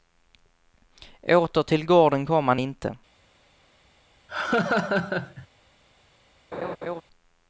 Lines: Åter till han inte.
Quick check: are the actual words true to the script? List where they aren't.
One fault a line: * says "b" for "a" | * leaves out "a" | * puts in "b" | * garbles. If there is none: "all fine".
* puts in "gården kom"